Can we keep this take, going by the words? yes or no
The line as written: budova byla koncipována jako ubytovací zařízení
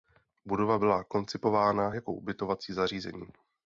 yes